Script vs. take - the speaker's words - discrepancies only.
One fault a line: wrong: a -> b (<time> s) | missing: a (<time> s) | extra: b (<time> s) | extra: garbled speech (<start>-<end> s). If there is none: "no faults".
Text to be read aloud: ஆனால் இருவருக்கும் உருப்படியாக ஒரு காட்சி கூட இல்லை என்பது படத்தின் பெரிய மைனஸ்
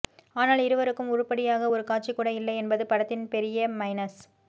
no faults